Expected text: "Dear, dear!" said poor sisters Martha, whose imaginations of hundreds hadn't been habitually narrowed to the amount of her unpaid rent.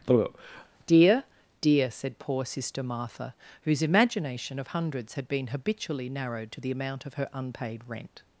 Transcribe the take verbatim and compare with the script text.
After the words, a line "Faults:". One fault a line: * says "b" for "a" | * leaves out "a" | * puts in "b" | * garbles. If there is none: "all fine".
"Dear, dear!" said poor sister Martha, whose imagination of hundreds had been habitually narrowed to the amount of her unpaid rent.
Faults:
* says "sister" for "sisters"
* says "imagination" for "imaginations"
* says "had" for "hadn't"